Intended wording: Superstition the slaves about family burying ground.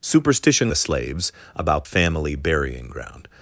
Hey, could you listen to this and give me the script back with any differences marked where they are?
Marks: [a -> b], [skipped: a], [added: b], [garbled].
Superstition the slaves about family burying ground.